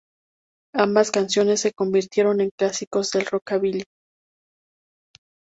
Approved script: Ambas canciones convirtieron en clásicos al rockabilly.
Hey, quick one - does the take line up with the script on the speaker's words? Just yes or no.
no